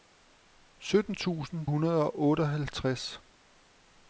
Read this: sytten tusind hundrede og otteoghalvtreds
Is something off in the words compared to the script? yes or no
no